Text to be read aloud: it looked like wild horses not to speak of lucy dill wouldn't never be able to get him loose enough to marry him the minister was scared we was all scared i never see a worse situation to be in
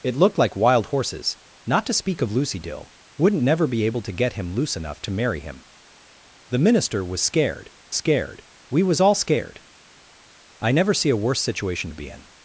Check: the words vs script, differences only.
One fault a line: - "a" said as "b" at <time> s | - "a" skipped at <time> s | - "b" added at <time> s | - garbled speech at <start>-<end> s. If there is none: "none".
- "scared" added at 7.9 s